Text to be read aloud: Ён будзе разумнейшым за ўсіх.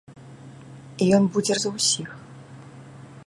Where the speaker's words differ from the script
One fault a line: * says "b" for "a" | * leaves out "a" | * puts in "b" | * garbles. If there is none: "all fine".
* leaves out "разумнейшым"